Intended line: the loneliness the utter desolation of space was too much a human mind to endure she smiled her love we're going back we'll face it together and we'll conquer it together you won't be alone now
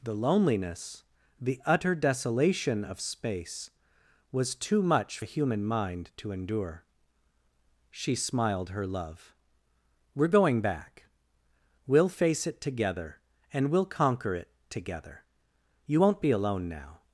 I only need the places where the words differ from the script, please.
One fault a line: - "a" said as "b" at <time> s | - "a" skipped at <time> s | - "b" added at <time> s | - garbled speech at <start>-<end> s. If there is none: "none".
none